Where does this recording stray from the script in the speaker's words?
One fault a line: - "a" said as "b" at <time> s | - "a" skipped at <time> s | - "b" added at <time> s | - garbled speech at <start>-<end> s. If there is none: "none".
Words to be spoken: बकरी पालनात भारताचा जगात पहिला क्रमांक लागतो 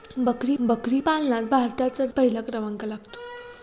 - "बकरी" added at 0.6 s
- "जगात" skipped at 2.1 s